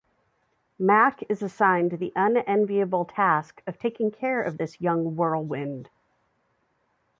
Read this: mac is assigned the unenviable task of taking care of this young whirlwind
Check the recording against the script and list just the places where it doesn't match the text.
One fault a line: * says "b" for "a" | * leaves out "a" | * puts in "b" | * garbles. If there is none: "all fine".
all fine